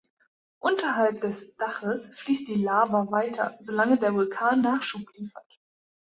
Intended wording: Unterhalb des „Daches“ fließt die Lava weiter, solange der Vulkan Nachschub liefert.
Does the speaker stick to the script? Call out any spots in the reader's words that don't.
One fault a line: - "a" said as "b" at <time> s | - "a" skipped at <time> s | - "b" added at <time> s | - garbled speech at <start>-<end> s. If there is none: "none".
none